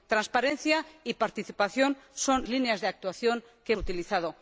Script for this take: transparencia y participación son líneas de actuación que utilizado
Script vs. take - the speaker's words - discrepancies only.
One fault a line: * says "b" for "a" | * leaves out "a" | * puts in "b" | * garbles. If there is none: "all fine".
all fine